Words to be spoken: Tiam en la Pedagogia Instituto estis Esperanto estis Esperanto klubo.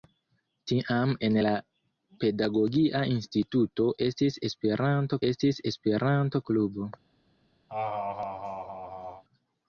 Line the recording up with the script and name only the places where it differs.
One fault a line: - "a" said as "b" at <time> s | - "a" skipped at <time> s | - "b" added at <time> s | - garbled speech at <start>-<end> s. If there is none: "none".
none